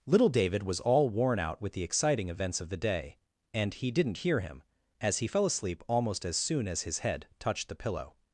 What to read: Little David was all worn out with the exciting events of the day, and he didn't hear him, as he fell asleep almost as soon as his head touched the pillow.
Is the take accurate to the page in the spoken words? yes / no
yes